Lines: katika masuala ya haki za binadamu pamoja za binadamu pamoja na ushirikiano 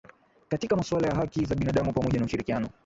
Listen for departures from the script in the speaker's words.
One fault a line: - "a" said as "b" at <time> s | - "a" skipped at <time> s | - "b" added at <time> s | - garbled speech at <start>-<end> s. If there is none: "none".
- "za binadamu pamoja" skipped at 2.2 s